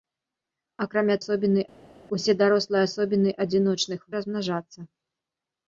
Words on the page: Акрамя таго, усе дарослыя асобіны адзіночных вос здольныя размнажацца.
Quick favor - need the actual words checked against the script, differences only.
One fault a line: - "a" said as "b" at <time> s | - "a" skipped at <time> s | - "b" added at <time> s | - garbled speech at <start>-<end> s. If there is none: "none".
- "таго" said as "асобіны" at 1.2 s
- "вос здольныя" skipped at 4.0 s